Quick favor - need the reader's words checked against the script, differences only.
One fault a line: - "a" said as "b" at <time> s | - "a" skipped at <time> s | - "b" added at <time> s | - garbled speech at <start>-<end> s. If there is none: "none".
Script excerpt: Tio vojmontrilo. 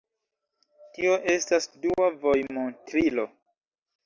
- "estas dua" added at 1.3 s